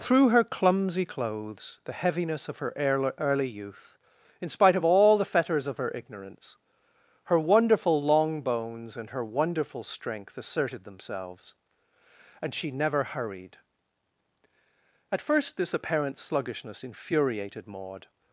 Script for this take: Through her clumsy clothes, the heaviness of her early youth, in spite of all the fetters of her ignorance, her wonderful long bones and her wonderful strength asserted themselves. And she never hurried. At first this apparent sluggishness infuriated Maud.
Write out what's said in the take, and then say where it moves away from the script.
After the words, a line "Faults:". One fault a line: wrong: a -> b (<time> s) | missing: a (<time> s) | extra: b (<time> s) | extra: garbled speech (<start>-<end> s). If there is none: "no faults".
Through her clumsy clothes, the heaviness of her early youth, in spite of all the fetters of her ignorance, her wonderful long bones and her wonderful strength asserted themselves. And she never hurried. At first this apparent sluggishness infuriated Maud.
Faults:
no faults